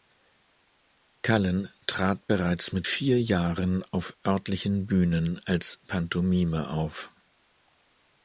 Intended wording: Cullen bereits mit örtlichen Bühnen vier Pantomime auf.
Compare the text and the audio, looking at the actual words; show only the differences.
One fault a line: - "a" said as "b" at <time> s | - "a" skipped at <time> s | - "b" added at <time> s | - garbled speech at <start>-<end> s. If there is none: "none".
- "trat" added at 1.9 s
- "vier Jahren auf" added at 2.8 s
- "vier" said as "als" at 5.4 s